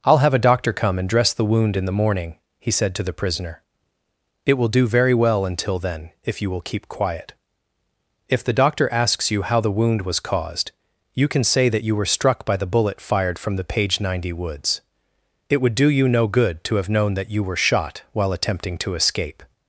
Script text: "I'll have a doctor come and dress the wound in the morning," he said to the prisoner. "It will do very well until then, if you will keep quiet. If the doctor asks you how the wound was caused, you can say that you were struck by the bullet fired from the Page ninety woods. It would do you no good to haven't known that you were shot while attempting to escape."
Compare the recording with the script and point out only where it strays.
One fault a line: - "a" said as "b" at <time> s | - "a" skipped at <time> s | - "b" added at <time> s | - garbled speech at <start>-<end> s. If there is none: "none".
- "haven't" said as "have" at 16.8 s